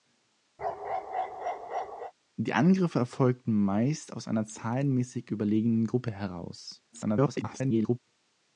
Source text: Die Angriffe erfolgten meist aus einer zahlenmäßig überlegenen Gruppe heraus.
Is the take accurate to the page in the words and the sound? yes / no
no